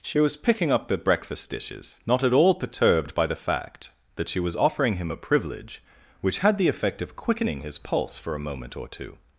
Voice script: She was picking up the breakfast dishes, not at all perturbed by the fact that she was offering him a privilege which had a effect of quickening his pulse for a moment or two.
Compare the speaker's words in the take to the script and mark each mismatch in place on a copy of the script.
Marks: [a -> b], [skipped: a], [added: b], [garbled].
She was picking up the breakfast dishes, not at all perturbed by the fact that she was offering him a privilege which had [a -> the] effect of quickening his pulse for a moment or two.